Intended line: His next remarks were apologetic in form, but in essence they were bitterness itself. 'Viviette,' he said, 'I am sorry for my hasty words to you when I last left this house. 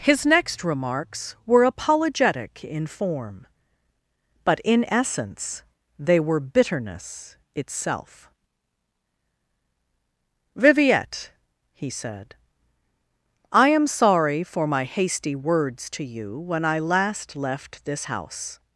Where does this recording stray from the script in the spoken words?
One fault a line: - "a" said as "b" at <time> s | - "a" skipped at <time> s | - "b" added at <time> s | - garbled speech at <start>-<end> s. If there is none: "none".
none